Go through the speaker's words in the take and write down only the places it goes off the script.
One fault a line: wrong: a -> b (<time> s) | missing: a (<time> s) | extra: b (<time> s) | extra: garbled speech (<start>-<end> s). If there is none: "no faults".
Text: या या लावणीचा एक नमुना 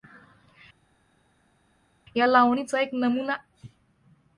missing: या (2.3 s)